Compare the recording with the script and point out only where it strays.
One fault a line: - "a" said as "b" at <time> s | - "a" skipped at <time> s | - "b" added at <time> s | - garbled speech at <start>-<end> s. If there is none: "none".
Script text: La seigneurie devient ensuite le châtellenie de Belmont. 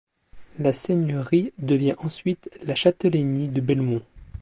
- "le" said as "la" at 2.6 s